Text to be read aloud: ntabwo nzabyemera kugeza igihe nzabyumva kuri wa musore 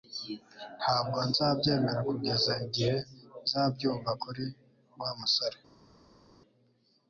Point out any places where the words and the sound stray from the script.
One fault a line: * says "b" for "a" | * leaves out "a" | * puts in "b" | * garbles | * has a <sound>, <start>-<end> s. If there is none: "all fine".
all fine